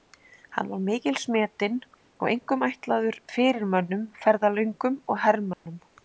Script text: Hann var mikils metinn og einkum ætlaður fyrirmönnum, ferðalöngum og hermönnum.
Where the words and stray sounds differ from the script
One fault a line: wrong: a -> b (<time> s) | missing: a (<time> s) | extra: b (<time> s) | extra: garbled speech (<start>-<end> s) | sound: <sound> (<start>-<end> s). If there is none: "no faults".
sound: dropout (5.5-5.7 s)